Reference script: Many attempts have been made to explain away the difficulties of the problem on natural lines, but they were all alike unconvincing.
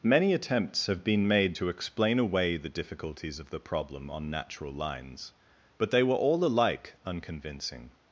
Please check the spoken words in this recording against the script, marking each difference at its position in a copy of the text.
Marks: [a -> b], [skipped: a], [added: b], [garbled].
Many attempts have been made to explain away the difficulties of the problem on natural lines, but they were all alike unconvincing.